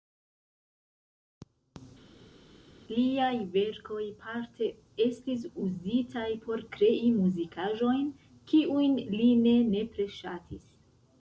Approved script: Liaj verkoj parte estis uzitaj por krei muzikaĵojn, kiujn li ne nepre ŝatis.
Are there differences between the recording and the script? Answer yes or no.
no